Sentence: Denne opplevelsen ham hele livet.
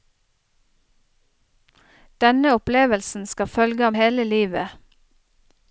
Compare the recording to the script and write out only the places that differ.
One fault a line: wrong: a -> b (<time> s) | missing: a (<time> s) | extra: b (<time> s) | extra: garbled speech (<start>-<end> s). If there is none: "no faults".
extra: skal følge (3.2 s)